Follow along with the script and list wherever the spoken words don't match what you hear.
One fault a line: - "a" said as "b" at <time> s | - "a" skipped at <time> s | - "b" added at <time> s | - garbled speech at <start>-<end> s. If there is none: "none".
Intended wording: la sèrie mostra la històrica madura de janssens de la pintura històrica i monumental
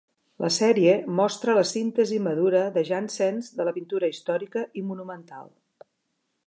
- "històrica" said as "síntesi" at 1.7 s